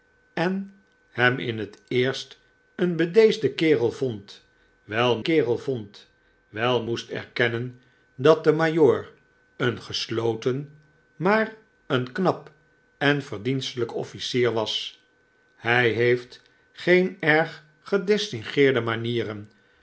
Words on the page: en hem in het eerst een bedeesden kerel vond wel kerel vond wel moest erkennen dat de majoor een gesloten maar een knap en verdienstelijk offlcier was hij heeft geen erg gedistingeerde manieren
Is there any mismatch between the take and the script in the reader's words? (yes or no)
no